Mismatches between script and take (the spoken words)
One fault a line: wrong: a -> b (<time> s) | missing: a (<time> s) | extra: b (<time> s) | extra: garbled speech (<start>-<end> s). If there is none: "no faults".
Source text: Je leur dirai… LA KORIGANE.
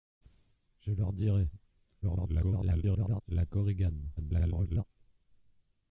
extra: garbled speech (2.0-3.2 s)
extra: garbled speech (4.2-4.8 s)